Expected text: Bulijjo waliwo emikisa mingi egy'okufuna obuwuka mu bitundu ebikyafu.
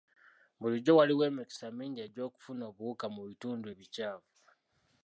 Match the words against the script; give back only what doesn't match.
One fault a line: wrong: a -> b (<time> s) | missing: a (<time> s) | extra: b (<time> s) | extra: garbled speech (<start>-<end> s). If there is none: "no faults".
no faults